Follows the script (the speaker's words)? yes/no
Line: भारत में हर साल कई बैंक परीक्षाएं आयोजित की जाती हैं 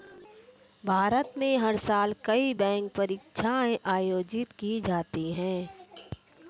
yes